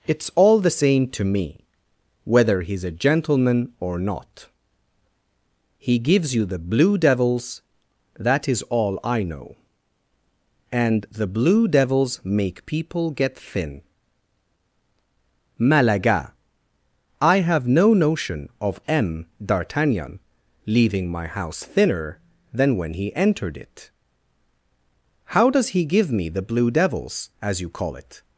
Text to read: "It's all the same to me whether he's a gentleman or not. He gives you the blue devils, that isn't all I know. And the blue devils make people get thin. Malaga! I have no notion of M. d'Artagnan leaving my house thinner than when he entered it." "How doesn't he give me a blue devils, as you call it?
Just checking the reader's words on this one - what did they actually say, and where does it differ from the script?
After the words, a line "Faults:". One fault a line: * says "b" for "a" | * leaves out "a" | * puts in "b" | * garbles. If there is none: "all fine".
"It's all the same to me whether he's a gentleman or not. He gives you the blue devils, that is all I know. And the blue devils make people get thin. Malaga! I have no notion of M. d'Artagnan leaving my house thinner than when he entered it." "How does he give me the blue devils, as you call it?
Faults:
* says "is" for "isn't"
* says "does" for "doesn't"
* says "the" for "a"